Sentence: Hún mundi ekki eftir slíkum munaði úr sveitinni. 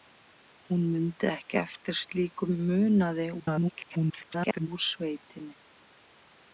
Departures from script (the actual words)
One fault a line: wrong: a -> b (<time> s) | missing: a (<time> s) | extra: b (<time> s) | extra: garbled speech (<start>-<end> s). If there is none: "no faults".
extra: garbled speech (3.4-4.7 s)